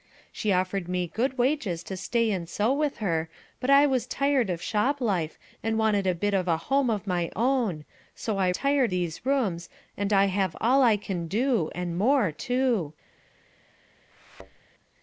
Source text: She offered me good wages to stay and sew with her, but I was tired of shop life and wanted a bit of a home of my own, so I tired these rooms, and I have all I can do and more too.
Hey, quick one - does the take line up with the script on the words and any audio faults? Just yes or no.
no